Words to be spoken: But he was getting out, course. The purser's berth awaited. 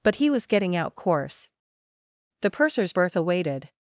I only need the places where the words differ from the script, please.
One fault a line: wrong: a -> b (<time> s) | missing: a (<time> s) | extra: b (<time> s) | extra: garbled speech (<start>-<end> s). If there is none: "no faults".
no faults